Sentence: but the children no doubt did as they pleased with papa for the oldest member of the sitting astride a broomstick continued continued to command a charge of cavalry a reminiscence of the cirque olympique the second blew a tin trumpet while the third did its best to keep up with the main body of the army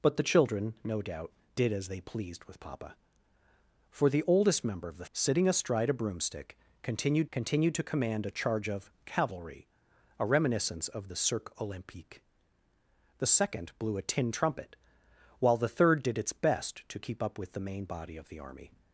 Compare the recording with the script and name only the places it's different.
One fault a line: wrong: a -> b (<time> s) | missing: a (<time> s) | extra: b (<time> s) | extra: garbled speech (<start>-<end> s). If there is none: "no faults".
no faults